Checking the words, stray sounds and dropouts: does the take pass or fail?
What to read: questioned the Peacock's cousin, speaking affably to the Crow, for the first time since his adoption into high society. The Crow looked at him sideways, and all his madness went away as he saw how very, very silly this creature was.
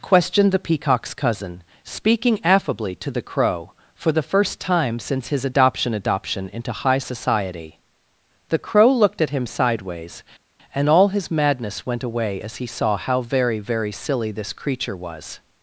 fail